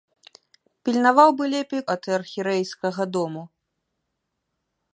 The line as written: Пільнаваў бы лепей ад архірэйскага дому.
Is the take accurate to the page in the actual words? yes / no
yes